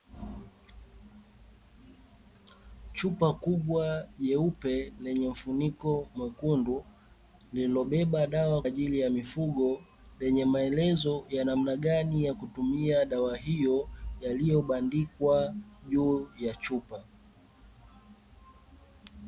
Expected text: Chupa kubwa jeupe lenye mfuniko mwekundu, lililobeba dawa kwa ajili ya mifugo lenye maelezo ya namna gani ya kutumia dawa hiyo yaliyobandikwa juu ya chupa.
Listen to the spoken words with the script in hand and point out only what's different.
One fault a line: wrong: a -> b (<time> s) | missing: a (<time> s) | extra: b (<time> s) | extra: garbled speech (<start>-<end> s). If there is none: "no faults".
missing: kwa (8.6 s)